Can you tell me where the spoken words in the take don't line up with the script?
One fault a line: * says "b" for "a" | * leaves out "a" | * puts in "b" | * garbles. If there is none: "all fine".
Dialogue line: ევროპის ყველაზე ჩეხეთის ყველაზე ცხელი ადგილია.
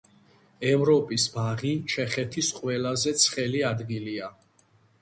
* says "ბაღი" for "ყველაზე"